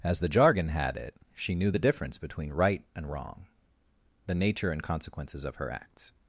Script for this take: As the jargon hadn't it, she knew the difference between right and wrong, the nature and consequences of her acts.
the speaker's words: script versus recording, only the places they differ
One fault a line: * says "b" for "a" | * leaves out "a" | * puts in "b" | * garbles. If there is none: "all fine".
* says "had" for "hadn't"